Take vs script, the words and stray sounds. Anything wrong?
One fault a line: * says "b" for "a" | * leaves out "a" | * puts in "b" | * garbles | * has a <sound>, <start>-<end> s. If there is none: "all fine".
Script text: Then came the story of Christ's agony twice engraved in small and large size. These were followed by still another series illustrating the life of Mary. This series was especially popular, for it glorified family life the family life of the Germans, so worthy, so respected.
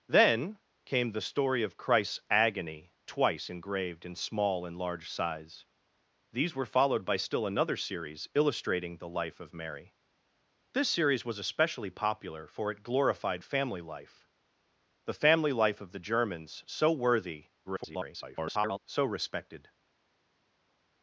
* garbles